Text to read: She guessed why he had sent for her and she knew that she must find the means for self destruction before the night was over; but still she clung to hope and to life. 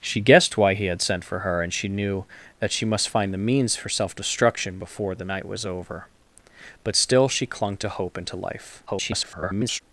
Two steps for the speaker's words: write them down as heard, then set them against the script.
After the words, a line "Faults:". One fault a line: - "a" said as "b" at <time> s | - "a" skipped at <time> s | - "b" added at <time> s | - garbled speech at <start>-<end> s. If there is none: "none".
She guessed why he had sent for her and she knew that she must find the means for self destruction before the night was over; but still she clung to hope and to life. [garbled]
Faults:
- garbled speech at 8.9-9.8 s